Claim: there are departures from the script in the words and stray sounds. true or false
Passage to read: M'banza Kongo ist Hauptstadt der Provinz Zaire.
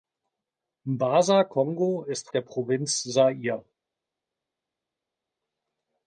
true